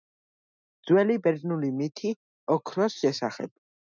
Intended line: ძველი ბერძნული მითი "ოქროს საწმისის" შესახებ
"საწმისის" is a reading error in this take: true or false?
true